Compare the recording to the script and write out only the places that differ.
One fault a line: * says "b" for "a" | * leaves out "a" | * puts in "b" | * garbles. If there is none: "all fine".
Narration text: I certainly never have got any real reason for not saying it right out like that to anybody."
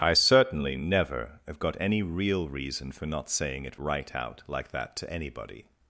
all fine